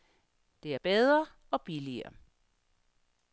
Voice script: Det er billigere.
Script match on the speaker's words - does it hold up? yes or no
no